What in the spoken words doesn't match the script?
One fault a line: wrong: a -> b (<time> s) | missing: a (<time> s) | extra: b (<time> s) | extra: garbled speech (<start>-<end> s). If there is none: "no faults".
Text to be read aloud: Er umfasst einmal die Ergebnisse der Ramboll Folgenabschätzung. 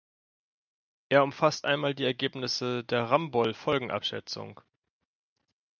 no faults